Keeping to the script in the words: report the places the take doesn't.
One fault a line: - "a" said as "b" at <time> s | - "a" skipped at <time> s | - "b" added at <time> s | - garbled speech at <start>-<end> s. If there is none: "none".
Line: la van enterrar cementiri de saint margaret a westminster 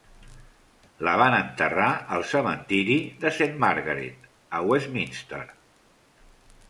- "al" added at 2.1 s